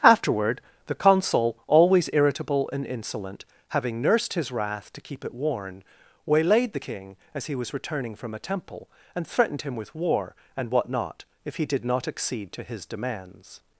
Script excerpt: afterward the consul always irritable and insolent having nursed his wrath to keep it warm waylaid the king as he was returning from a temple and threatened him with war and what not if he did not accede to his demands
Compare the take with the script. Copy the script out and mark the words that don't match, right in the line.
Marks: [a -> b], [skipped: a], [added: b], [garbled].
afterward the consul always irritable and insolent having nursed his wrath to keep it [warm -> worn] waylaid the king as he was returning from a temple and threatened him with war and what not if he did not accede to his demands